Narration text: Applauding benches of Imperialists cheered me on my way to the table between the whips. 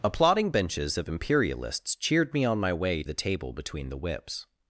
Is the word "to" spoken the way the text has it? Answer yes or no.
no